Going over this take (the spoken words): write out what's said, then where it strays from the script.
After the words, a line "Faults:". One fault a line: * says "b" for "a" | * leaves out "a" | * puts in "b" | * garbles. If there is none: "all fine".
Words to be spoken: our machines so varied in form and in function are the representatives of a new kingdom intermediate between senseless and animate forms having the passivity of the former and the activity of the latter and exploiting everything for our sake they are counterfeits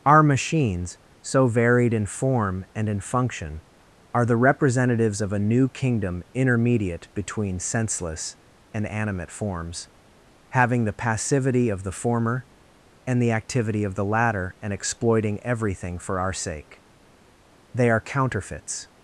our machines so varied in form and in function are the representatives of a new kingdom intermediate between senseless and animate forms having the passivity of the former and the activity of the latter and exploiting everything for our sake they are counterfeits
Faults:
all fine